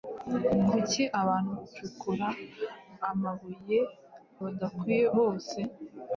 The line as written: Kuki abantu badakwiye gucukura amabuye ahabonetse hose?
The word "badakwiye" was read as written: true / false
false